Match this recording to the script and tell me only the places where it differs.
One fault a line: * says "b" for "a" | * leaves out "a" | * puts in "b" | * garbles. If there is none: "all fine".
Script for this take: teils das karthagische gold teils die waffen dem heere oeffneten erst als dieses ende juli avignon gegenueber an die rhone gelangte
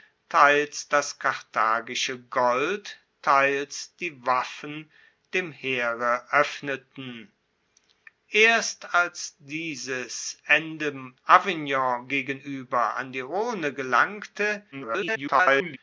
* leaves out "juli"
* garbles